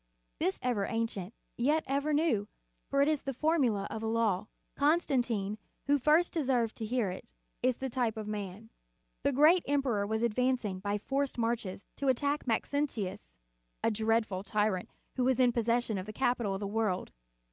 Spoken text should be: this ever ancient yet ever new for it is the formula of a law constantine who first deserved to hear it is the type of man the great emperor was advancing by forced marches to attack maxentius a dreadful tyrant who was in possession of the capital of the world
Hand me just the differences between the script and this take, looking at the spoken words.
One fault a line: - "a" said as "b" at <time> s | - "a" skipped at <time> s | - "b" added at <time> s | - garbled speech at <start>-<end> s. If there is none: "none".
none